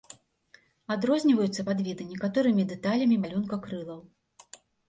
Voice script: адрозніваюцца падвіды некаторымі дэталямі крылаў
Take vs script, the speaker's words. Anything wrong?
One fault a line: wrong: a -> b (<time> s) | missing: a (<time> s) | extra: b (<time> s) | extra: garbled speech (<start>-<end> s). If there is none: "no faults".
extra: малюнка (3.2 s)